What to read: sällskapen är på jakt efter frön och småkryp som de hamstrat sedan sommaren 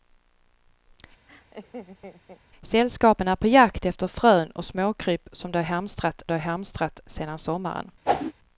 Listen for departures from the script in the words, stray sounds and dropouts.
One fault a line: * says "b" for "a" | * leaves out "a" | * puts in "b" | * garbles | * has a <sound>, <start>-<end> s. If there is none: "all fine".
* has a laugh, 1.3-2.4 s
* puts in "de hamstrat"
* has a whoosh, 8.1-8.3 s